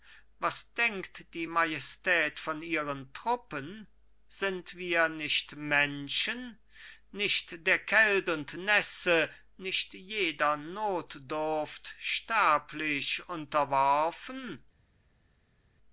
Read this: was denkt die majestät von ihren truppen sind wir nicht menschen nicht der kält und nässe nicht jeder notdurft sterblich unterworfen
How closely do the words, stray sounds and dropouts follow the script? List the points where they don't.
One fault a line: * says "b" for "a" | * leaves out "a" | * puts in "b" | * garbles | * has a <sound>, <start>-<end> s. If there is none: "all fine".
all fine